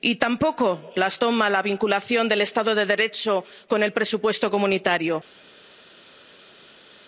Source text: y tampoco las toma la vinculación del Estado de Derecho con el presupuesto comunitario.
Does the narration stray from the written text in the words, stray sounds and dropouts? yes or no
no